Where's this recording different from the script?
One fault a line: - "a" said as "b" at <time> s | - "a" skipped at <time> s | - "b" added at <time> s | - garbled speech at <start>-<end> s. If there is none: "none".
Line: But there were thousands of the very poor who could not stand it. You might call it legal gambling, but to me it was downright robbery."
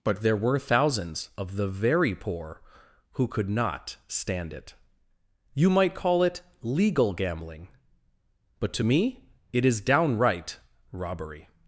- "was" said as "is" at 9.6 s